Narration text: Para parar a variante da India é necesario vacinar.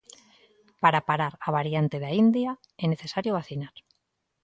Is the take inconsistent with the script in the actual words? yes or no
no